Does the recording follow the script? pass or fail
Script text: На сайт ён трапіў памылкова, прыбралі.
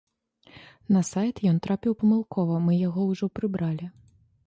fail